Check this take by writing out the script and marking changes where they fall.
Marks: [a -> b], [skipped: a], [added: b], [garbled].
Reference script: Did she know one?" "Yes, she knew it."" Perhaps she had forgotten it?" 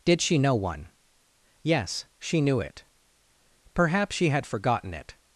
Did she know one?" "Yes, she knew it."" Perhaps she had forgotten it?"